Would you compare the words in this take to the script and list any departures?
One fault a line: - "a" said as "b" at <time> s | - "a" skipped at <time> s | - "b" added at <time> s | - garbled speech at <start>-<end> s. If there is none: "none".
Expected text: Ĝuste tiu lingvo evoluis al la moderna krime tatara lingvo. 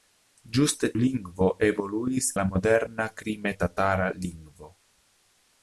- "tiu" skipped at 0.9 s
- "al" skipped at 2.3 s